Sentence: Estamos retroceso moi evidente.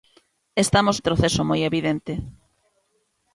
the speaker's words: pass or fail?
pass